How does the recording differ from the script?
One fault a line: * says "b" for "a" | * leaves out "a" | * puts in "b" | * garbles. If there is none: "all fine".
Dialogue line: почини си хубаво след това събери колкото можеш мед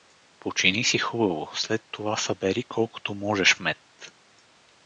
all fine